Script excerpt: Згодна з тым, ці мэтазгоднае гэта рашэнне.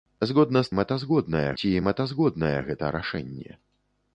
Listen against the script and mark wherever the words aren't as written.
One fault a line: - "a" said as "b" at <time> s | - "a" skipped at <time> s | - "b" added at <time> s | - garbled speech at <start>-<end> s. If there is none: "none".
- "тым" said as "мэтазгоднае" at 0.8 s